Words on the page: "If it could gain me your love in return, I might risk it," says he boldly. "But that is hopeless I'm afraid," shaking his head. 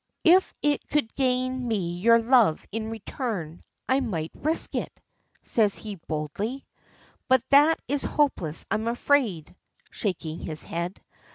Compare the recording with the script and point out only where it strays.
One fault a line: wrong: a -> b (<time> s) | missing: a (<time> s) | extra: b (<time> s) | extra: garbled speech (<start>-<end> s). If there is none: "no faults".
no faults